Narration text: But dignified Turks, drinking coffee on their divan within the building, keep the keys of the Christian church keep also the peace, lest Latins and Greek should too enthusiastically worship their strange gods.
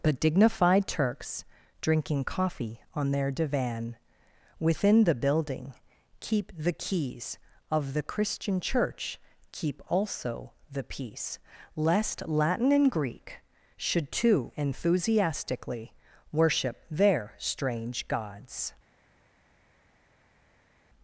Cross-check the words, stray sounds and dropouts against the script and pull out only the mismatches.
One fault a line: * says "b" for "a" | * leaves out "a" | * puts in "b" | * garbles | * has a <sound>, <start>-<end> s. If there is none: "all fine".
* says "Latin" for "Latins"